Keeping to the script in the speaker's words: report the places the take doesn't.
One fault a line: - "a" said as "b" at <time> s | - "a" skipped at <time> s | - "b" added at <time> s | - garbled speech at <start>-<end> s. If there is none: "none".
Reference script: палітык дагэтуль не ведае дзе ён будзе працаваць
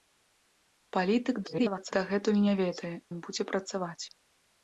- garbled speech at 1.4-1.9 s
- "дзе" skipped at 2.9 s